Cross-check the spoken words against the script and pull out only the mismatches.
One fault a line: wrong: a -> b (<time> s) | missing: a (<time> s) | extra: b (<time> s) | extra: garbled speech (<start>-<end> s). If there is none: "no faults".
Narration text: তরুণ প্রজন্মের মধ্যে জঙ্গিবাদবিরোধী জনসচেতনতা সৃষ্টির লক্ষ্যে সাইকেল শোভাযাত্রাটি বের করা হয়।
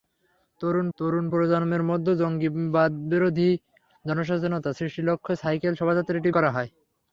extra: তরুণ (1.0 s)
missing: বের (6.3 s)